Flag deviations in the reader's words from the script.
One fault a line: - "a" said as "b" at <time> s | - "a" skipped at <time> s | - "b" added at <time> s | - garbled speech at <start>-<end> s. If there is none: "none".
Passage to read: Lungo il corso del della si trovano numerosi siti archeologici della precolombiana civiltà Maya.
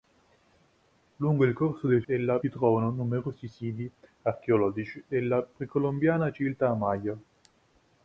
none